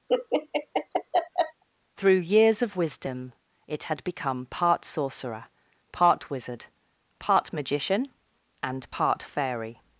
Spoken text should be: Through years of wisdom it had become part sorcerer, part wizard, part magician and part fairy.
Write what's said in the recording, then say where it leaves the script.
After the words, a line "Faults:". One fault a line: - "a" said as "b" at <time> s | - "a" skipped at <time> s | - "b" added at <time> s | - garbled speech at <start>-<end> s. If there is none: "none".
Through years of wisdom it had become part sorcerer, part wizard, part magician and part fairy.
Faults:
none